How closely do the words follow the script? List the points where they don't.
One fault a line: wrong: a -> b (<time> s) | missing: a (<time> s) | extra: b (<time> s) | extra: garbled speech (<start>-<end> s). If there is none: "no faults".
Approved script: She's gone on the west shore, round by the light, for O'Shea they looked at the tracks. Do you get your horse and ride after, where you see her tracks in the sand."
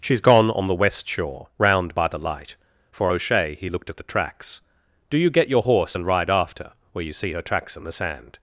wrong: they -> he (3.6 s)